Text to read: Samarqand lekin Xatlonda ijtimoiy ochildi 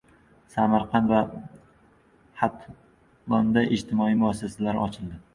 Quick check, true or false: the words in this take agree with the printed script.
false